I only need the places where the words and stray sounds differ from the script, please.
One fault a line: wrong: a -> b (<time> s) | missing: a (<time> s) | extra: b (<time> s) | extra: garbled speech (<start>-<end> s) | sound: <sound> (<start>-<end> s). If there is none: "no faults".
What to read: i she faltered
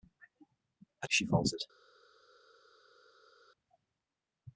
no faults